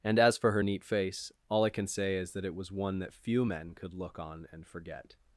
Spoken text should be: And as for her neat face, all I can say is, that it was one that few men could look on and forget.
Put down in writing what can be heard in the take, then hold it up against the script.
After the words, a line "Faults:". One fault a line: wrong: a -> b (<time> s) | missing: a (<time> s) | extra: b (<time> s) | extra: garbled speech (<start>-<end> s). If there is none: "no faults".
And as for her neat face, all I can say is, that it was one that few men could look on and forget.
Faults:
no faults